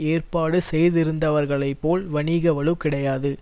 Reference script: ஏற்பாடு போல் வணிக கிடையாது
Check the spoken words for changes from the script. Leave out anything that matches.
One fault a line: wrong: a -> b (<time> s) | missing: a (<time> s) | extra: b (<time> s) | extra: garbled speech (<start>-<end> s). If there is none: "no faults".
extra: செய்திருந்தவர்களைப் (0.7 s)
extra: வலு (2.5 s)